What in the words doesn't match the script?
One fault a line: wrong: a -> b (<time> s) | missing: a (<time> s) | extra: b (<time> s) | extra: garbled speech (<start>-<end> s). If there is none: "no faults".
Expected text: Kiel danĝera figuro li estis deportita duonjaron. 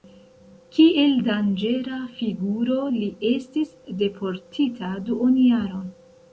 no faults